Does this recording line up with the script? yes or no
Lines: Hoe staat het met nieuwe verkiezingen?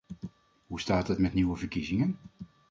yes